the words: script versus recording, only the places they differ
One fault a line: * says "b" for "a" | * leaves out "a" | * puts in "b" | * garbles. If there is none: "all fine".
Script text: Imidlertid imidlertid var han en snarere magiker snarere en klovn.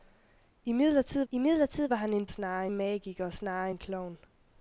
all fine